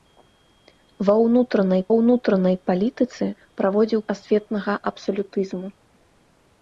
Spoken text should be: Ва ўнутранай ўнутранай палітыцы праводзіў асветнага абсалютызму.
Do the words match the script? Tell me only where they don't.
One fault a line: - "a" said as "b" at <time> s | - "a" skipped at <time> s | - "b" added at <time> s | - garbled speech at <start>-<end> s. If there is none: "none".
none